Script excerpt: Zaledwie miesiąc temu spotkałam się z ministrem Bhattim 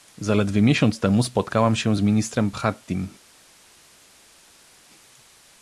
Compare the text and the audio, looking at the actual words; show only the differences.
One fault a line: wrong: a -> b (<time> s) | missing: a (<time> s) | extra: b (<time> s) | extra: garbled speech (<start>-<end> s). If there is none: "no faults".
no faults